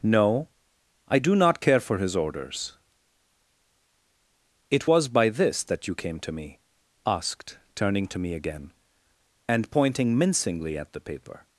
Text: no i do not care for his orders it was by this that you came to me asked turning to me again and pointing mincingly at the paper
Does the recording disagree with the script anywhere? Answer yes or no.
no